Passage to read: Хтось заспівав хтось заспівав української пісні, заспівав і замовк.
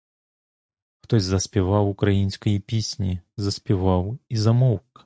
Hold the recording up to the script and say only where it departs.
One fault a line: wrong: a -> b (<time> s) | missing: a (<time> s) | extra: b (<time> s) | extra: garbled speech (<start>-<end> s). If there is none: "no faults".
missing: хтось заспівав (1.9 s)